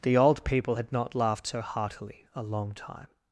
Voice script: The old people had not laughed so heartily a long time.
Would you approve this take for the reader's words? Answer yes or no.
yes